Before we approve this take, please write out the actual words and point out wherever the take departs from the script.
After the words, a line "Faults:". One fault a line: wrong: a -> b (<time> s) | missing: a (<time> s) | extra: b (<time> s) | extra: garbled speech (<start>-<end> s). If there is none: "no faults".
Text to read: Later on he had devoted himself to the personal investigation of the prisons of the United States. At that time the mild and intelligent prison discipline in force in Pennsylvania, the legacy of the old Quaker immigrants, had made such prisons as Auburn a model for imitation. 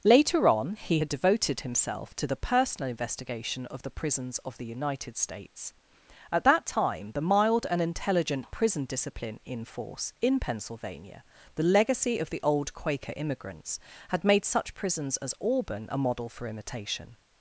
Later on he had devoted himself to the personal investigation of the prisons of the United States. At that time the mild and intelligent prison discipline in force in Pennsylvania, the legacy of the old Quaker immigrants, had made such prisons as Auburn a model for imitation.
Faults:
no faults